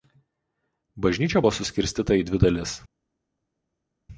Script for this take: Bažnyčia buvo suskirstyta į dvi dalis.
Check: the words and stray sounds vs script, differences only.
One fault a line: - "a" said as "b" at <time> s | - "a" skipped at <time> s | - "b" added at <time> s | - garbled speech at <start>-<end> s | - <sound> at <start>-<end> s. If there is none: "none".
none